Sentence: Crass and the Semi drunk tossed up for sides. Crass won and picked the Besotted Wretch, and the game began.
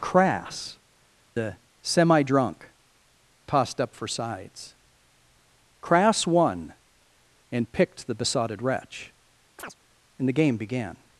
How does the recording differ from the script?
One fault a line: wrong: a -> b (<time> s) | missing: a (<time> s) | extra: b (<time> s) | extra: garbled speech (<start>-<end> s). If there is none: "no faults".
missing: and (0.8 s)